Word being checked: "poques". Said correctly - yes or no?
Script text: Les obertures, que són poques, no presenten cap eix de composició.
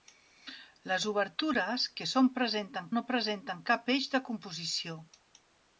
no